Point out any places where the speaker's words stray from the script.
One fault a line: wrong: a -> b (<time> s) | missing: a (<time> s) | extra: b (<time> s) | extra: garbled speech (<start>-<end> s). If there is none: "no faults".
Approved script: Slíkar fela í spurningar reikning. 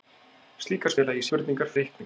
no faults